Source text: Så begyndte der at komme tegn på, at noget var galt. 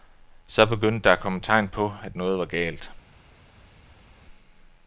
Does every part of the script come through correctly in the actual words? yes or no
yes